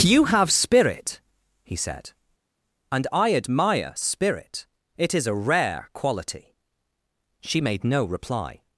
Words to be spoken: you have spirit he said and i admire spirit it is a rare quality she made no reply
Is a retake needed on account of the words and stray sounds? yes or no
no